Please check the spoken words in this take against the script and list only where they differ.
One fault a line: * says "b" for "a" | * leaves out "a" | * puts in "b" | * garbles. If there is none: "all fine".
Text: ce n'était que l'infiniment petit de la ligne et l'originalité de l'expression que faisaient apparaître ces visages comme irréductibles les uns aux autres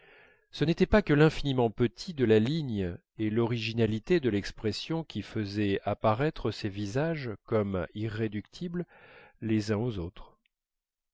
* puts in "pas"
* says "qui" for "que"